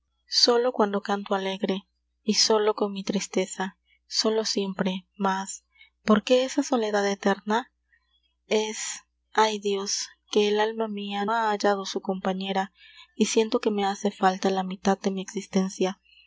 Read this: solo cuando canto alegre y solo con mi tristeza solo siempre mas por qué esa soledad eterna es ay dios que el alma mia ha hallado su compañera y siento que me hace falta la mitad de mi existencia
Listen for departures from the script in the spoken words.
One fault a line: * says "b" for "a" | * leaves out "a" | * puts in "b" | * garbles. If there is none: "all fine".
all fine